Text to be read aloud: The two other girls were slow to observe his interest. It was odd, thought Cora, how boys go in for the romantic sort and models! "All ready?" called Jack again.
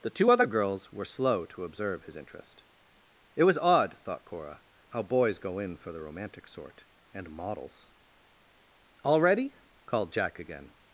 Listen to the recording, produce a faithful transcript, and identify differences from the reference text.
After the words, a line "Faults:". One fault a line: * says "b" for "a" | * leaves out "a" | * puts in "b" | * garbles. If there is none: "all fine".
The two other girls were slow to observe his interest. It was odd, thought Cora, how boys go in for the romantic sort and models! "All ready?" called Jack again.
Faults:
all fine